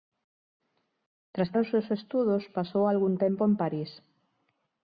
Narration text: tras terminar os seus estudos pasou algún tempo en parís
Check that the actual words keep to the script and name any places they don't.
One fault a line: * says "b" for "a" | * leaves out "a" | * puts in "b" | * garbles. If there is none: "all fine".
* leaves out "terminar"